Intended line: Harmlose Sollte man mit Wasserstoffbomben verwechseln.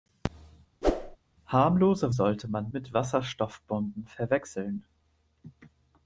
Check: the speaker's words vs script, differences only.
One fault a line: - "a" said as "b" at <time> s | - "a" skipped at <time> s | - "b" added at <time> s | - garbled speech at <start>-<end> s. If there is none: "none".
none